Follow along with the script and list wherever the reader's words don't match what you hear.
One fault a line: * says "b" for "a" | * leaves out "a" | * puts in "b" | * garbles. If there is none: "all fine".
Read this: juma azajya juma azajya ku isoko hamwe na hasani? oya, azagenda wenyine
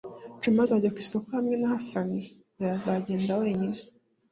* leaves out "juma azajya"